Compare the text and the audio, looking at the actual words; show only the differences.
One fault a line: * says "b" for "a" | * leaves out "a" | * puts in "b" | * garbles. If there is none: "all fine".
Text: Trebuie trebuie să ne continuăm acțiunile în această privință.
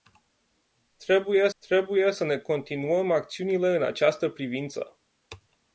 all fine